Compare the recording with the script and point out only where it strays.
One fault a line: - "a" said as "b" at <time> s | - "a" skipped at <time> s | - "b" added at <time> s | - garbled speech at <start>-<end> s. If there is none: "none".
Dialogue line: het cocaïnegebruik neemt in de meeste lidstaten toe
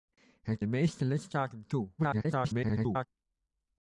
- "cocaïnegebruik neemt in" skipped at 0.6 s
- garbled speech at 2.0-3.1 s